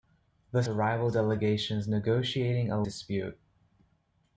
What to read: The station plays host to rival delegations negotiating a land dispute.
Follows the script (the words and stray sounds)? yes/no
no